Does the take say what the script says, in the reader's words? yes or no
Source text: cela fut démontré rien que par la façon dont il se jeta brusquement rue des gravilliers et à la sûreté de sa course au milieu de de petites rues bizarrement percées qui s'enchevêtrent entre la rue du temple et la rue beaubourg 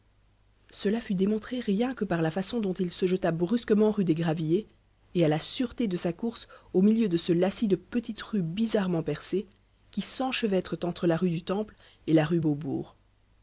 no